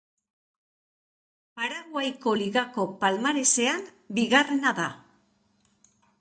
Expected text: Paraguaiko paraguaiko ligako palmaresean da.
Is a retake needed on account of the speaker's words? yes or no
yes